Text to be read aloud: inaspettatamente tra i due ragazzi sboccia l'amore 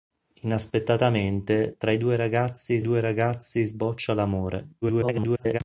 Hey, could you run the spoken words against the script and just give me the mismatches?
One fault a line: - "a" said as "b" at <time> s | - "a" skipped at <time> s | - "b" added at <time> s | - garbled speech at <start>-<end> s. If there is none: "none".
- "due ragazzi" added at 2.8 s
- garbled speech at 4.8-5.6 s